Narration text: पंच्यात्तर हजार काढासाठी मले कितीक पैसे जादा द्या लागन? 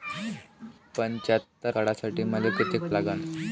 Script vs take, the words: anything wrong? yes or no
yes